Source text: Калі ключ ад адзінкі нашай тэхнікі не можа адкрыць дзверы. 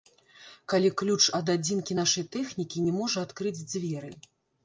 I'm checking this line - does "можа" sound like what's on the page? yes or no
yes